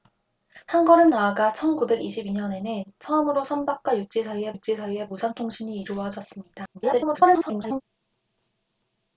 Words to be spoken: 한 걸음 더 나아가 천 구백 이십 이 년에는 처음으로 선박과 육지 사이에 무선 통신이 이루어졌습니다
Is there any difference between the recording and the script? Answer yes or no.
yes